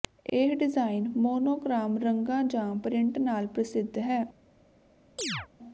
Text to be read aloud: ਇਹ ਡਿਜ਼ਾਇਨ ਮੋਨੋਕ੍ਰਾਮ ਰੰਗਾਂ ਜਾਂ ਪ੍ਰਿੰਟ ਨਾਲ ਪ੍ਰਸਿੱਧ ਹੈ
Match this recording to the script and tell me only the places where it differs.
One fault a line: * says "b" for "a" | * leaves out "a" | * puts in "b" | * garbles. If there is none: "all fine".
all fine